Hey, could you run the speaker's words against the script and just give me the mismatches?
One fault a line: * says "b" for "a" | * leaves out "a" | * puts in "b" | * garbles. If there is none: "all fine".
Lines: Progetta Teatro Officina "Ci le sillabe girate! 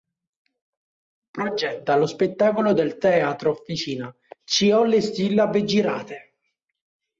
* puts in "lo spettacolo del"
* puts in "ho"